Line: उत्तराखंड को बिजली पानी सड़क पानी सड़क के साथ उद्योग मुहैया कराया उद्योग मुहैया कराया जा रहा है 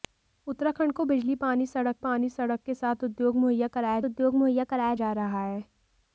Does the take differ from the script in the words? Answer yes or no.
no